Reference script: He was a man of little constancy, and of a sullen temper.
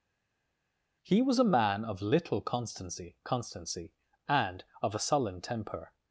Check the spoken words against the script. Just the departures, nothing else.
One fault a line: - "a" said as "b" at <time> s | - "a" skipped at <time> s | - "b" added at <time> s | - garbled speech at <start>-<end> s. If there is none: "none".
- "constancy" added at 3.2 s